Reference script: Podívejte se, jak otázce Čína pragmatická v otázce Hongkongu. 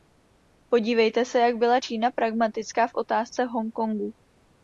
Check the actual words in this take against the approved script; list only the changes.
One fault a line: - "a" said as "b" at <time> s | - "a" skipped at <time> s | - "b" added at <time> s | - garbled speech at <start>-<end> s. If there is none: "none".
- "otázce" said as "byla" at 1.6 s